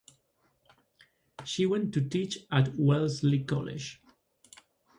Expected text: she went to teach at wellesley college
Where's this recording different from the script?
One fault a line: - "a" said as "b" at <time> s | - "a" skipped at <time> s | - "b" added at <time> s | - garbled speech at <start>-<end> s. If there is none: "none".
none